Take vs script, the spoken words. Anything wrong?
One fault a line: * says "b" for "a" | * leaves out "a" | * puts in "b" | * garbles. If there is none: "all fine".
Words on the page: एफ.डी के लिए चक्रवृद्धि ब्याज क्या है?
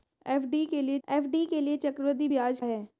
* puts in "एफ.डी के लिए"
* leaves out "क्या"